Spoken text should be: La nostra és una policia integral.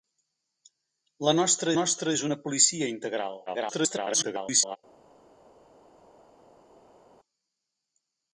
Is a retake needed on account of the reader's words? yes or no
yes